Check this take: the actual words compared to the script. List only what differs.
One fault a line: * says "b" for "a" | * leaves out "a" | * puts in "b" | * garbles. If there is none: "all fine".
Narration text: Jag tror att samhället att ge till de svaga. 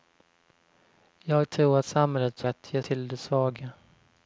all fine